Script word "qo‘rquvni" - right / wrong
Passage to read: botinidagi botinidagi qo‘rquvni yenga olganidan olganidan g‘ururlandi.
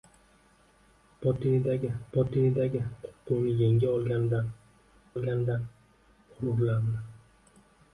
right